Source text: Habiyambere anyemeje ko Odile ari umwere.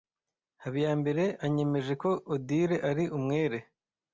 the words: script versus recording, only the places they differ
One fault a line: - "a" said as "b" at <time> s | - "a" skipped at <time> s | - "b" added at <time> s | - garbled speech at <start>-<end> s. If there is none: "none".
none